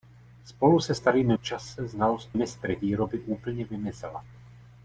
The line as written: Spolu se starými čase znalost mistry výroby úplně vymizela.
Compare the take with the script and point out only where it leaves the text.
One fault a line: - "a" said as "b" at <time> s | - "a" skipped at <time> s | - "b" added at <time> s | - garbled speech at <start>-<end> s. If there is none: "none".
none